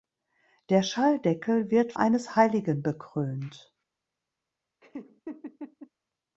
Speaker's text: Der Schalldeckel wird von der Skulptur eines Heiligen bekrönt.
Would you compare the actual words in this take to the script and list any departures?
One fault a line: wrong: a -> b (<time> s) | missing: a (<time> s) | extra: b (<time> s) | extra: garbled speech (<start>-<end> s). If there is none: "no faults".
missing: von der Skulptur (1.9 s)